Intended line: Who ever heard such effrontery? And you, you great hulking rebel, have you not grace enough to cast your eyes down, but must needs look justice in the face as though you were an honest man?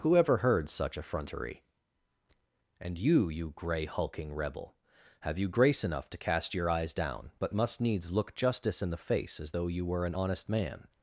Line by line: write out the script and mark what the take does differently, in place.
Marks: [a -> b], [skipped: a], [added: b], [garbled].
Who ever heard such effrontery? And you, you [great -> grey] hulking rebel, have you [skipped: not] grace enough to cast your eyes down, but must needs look justice in the face as though you were an honest man?